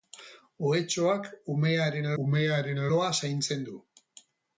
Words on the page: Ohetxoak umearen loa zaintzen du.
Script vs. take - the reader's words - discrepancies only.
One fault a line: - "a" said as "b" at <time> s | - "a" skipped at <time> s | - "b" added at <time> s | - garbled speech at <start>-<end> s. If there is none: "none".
- "umearen" added at 2.2 s